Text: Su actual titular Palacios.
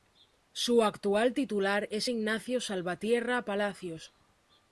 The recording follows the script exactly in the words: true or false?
false